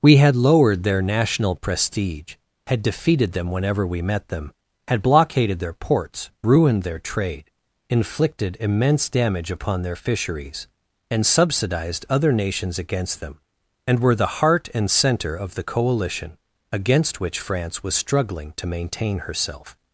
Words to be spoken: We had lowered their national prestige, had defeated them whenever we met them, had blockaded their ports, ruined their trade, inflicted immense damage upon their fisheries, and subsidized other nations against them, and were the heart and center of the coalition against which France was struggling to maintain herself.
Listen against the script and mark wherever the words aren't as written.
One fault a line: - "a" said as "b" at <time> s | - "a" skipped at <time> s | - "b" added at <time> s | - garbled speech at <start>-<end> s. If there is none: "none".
none